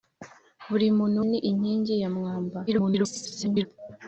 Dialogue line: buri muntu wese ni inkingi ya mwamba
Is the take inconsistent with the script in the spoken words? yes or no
yes